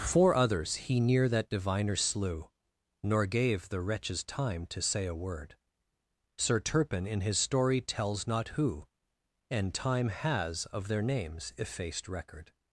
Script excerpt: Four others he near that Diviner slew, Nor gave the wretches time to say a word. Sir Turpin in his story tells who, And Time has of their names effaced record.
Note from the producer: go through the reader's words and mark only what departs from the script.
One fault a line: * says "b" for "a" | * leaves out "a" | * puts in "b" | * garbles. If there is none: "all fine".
* puts in "not"